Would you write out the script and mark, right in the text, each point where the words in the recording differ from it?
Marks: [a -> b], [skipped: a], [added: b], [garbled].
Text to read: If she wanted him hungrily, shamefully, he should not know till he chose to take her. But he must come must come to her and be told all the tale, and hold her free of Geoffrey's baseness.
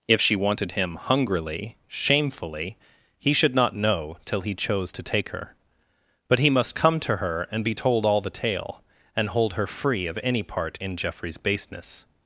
If she wanted him hungrily, shamefully, he should not know till he chose to take her. But he must come [skipped: must come] to her and be told all the tale, and hold her free of [added: any part in] Geoffrey's baseness.